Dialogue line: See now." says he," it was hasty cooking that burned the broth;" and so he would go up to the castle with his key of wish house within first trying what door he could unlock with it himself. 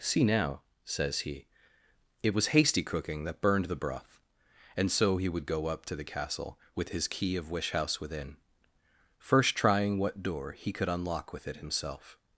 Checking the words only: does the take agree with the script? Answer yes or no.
yes